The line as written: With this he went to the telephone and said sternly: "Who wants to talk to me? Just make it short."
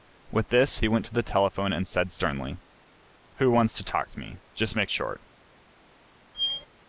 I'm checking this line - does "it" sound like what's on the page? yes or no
no